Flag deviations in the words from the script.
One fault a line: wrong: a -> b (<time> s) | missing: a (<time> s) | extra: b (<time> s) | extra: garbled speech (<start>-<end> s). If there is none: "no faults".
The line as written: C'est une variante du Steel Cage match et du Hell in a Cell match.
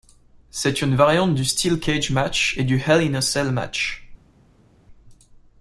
no faults